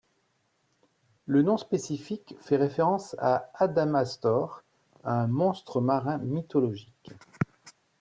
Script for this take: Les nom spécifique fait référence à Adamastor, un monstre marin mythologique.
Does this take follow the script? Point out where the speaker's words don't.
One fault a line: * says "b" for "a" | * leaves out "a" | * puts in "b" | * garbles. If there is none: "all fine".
* says "Le" for "Les"